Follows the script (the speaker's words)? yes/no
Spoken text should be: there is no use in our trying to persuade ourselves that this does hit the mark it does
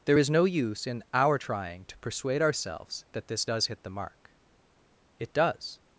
yes